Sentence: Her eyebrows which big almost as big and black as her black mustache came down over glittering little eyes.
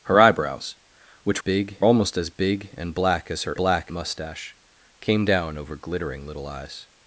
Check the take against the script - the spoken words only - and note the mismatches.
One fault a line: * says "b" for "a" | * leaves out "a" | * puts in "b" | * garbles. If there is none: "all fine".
all fine